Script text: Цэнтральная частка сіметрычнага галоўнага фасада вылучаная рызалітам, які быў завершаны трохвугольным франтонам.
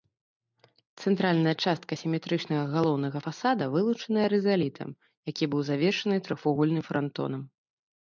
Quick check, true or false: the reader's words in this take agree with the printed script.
true